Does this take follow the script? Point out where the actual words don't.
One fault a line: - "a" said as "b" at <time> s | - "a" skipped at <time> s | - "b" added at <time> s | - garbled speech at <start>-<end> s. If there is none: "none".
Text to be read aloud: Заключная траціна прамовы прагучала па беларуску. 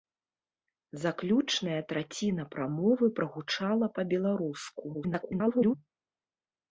- garbled speech at 4.9-5.7 s